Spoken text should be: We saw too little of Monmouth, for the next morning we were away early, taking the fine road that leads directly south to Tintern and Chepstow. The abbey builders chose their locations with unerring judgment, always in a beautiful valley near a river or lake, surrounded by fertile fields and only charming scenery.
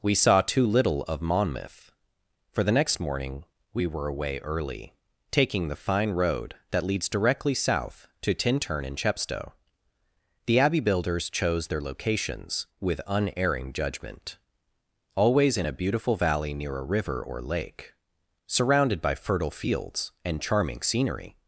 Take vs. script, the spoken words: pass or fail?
fail